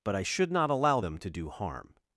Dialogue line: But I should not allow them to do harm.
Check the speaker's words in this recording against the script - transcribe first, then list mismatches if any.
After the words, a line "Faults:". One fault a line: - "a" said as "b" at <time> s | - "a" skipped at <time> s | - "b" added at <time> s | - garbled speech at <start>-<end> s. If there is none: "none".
But I should not allow them to do harm.
Faults:
none